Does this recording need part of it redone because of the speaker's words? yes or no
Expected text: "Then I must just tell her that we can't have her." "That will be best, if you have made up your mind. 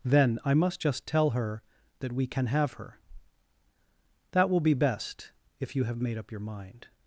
yes